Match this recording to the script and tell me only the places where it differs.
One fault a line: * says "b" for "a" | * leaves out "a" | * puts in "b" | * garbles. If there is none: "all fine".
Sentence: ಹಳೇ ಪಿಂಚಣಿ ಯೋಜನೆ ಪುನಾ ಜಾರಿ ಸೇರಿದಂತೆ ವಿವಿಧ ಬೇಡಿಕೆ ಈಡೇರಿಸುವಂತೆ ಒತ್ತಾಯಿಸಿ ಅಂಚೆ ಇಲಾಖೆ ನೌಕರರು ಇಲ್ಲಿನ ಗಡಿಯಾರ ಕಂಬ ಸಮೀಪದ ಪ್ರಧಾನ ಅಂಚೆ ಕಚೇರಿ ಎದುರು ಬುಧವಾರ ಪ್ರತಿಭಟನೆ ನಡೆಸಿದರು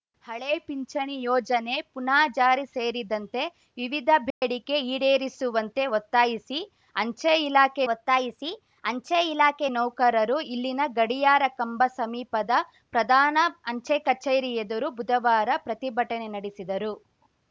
* puts in "ಒತ್ತಾಯಿಸಿ ಅಂಚೆ ಇಲಾಖೆ"